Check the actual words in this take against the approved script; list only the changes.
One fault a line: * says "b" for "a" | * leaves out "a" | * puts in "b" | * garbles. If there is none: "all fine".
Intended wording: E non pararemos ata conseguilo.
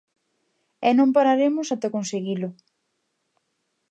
all fine